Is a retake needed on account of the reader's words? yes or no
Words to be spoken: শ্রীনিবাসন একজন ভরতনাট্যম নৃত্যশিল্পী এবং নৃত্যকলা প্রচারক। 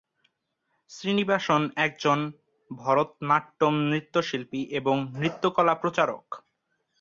no